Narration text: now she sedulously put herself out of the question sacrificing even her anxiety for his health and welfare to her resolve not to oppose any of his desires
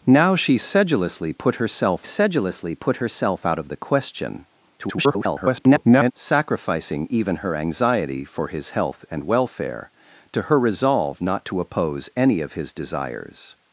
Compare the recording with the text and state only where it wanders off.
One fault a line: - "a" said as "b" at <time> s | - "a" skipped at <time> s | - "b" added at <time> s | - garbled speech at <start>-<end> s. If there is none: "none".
- "sedulously put herself" added at 2.0 s
- garbled speech at 4.8-6.1 s